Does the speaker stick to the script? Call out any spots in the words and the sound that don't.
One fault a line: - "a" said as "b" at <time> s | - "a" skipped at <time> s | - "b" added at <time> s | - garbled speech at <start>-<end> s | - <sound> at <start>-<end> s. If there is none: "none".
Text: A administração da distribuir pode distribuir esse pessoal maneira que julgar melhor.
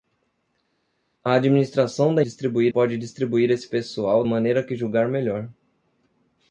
none